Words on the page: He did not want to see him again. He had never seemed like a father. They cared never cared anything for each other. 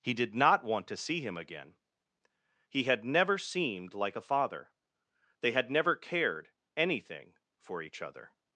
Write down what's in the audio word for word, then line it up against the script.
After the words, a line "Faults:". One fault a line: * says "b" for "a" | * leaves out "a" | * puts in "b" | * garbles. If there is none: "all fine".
He did not want to see him again. He had never seemed like a father. They had never cared anything for each other.
Faults:
* says "had" for "cared"